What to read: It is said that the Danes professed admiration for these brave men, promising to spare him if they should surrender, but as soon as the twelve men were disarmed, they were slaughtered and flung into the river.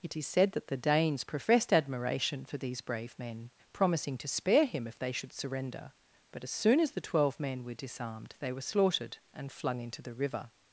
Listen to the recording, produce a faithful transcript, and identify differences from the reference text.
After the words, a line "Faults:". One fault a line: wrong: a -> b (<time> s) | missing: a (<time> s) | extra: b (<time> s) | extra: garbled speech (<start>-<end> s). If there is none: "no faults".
It is said that the Danes professed admiration for these brave men, promising to spare him if they should surrender, but as soon as the twelve men were disarmed, they were slaughtered and flung into the river.
Faults:
no faults